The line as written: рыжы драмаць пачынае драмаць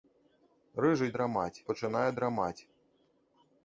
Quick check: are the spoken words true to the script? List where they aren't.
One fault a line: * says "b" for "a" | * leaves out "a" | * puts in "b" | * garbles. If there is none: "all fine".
all fine